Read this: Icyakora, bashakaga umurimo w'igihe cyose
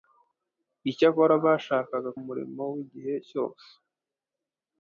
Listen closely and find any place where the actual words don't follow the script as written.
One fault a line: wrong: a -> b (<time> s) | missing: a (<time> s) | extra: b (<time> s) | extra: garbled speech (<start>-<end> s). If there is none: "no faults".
no faults